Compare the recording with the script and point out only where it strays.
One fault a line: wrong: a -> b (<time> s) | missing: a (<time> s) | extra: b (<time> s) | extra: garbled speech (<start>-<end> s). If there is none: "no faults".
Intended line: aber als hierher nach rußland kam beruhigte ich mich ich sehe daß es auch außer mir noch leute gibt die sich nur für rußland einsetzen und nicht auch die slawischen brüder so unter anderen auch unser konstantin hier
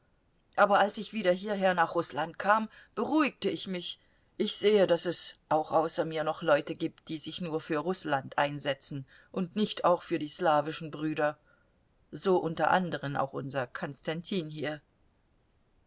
extra: ich wieder (1.0 s)
extra: für (10.0 s)